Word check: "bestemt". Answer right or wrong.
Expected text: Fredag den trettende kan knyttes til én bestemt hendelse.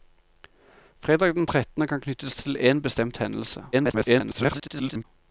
right